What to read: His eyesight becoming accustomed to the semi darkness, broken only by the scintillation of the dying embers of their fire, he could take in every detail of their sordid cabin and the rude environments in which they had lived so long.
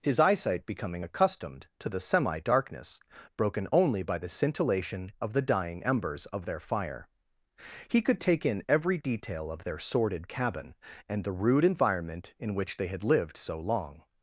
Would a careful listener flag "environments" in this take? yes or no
yes